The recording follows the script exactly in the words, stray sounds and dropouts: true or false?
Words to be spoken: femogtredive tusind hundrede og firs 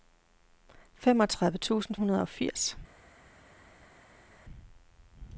true